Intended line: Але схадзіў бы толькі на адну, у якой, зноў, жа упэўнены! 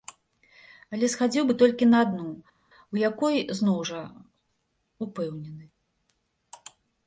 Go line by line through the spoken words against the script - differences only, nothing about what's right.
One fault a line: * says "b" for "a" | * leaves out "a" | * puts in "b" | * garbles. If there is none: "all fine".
all fine